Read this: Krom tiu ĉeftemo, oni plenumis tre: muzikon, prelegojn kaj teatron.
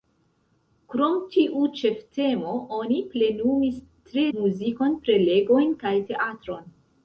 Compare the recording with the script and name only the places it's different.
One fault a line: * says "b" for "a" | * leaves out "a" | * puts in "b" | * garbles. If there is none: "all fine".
all fine